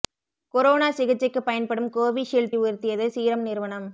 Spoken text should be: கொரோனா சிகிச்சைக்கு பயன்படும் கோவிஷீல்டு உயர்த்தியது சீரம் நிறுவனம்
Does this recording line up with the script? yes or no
yes